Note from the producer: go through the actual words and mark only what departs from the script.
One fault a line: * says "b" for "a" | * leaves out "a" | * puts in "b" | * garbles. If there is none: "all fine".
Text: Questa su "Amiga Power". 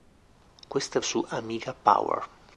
all fine